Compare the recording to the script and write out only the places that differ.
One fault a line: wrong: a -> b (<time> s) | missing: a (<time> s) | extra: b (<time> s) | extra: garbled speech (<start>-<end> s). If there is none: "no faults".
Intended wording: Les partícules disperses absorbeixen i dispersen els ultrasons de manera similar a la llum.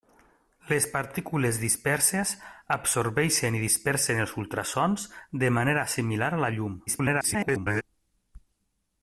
extra: garbled speech (6.9-7.8 s)